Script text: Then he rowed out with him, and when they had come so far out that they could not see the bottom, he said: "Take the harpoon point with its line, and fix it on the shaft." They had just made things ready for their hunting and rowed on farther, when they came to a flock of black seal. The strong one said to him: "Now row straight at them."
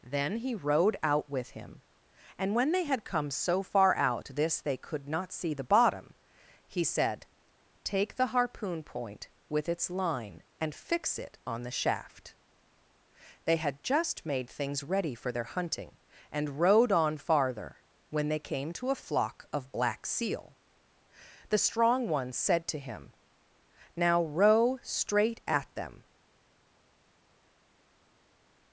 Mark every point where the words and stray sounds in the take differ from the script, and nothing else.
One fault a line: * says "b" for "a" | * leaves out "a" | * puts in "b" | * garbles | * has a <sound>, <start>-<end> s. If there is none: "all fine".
* says "this" for "that"